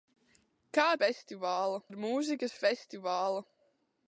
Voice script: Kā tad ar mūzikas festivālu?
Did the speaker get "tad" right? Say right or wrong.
wrong